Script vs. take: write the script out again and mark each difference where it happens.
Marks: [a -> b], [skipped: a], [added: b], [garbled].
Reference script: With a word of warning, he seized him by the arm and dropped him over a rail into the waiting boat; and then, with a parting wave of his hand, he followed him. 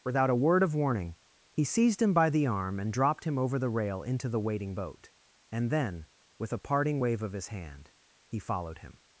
[With -> Without] a word of warning, he seized him by the arm and dropped him over [a -> the] rail into the waiting boat; and then, with a parting wave of his hand, he followed him.